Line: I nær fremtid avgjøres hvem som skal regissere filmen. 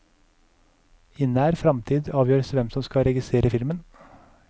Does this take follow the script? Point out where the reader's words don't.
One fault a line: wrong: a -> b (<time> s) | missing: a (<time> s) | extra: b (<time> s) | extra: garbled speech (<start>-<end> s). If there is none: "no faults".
no faults